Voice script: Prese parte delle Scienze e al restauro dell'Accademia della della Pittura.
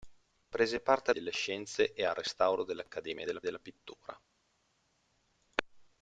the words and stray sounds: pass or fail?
pass